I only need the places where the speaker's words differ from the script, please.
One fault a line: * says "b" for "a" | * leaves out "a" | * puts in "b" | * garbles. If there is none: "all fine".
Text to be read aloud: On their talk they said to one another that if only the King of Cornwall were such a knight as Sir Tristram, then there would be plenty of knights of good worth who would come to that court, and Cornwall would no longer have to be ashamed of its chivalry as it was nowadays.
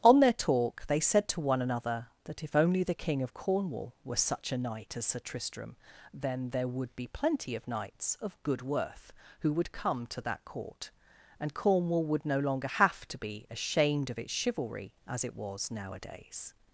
all fine